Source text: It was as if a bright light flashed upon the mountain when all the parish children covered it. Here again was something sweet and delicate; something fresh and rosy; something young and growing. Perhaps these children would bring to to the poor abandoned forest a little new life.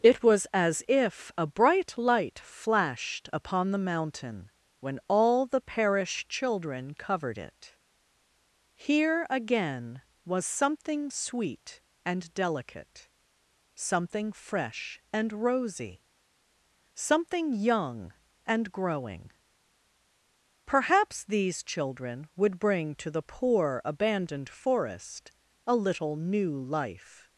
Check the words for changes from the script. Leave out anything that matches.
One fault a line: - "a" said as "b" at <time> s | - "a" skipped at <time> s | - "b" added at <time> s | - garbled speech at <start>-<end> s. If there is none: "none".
- "to" skipped at 23.1 s